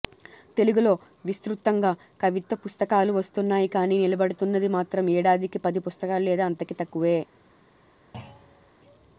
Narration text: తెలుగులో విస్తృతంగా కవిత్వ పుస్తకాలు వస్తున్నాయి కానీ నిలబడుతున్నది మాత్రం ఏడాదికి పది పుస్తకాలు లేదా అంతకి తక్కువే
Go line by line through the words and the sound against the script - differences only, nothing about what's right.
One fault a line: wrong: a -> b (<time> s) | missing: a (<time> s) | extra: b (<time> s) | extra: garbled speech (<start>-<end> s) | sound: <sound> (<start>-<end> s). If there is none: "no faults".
sound: thud (8.1-8.7 s)